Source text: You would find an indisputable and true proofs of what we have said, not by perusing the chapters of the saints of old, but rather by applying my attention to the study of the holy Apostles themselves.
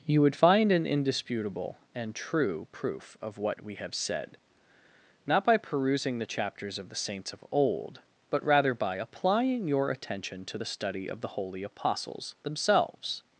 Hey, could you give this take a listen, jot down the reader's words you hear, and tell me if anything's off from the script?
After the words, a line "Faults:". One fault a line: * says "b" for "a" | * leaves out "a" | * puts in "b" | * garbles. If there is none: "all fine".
You would find an indisputable and true proof of what we have said, not by perusing the chapters of the saints of old, but rather by applying your attention to the study of the holy Apostles themselves.
Faults:
* says "proof" for "proofs"
* says "your" for "my"